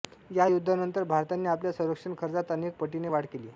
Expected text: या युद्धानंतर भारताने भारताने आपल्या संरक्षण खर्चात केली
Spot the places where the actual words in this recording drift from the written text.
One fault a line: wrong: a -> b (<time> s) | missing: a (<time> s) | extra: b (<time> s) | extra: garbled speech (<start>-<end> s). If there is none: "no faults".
missing: भारताने (1.5 s)
extra: अनेक पटीने वाढ (2.5 s)